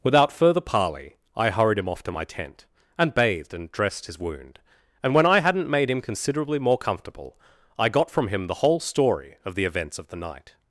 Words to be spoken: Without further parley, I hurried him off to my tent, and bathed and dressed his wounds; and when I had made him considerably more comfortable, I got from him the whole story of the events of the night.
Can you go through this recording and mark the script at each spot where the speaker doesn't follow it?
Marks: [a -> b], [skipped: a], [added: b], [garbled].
Without further parley, I hurried him off to my tent, and bathed and dressed his [wounds; -> wound] and when I [had -> hadn't] made him considerably more comfortable, I got from him the whole story of the events of the night.